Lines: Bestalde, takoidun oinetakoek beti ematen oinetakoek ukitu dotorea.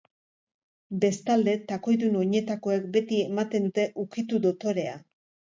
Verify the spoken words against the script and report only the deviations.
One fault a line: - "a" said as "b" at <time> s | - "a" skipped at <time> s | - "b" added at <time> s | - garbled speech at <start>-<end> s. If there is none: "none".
- "oinetakoek" said as "dute" at 3.7 s